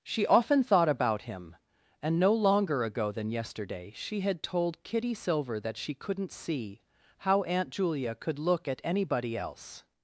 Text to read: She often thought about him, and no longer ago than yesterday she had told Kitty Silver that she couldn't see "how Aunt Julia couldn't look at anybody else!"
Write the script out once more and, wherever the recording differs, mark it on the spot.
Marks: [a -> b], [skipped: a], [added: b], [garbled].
She often thought about him, and no longer ago than yesterday she had told Kitty Silver that she couldn't see "how Aunt Julia [couldn't -> could] look at anybody else!"